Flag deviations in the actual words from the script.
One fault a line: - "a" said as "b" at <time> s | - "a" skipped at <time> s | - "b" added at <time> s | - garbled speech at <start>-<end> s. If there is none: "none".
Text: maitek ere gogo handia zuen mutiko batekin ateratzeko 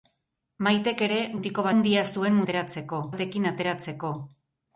- "gogo" said as "mutiko" at 1.4 s
- "mutiko" said as "ateratzeko" at 2.5 s